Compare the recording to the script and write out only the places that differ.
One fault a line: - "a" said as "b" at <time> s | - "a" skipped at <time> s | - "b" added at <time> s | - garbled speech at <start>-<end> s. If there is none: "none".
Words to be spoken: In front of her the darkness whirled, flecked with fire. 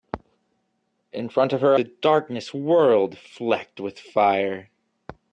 none